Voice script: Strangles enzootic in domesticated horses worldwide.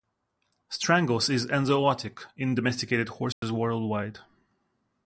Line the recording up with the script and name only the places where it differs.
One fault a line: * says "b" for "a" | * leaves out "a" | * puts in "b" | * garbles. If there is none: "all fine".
* puts in "is"